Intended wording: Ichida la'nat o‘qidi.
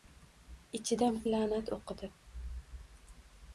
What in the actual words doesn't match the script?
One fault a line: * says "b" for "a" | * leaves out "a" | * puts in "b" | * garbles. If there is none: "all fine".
all fine